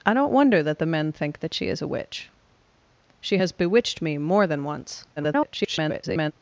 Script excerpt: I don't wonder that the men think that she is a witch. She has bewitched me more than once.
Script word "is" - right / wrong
right